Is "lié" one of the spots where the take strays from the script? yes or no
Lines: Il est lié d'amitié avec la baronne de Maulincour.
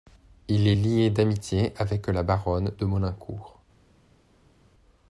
no